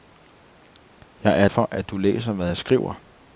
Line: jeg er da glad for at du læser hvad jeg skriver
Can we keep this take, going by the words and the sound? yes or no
no